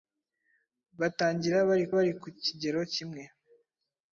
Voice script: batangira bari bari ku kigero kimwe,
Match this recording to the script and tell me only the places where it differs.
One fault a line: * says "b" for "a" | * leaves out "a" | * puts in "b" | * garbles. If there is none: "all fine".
all fine